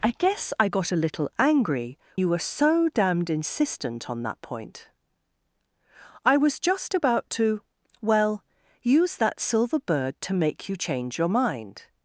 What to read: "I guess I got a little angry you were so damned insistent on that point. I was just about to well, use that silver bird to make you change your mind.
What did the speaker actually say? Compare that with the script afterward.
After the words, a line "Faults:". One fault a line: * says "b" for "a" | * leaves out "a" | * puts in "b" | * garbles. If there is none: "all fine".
"I guess I got a little angry you were so damned insistent on that point. I was just about to well, use that silver bird to make you change your mind.
Faults:
all fine